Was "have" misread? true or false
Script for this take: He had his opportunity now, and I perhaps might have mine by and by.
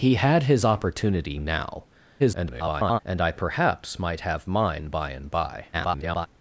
false